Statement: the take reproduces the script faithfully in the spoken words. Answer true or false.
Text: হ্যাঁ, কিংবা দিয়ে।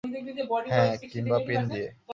false